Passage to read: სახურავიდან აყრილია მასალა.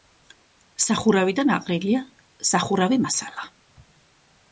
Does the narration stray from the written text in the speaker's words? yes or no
yes